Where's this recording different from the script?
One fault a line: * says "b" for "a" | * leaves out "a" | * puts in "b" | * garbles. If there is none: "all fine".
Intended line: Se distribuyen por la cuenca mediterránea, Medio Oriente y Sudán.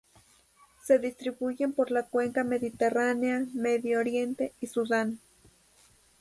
all fine